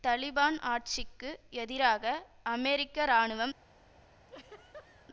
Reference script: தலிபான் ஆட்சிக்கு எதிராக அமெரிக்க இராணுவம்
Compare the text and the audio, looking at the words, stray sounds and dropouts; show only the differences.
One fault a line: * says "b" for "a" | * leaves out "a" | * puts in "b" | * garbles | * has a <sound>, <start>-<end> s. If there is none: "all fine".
* has a laugh, 4.3-5.1 s